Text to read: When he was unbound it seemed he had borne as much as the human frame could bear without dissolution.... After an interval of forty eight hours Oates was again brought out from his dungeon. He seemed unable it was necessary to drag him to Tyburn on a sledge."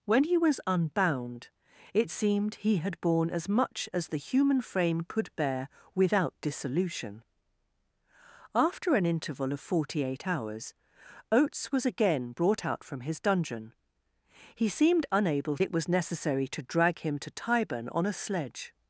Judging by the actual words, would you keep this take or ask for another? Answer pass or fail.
pass